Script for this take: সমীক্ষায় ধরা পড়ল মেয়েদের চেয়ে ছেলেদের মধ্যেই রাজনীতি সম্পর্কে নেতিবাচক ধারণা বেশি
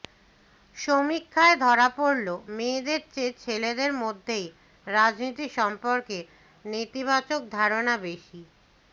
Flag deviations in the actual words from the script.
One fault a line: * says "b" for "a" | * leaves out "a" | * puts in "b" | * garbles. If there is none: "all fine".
all fine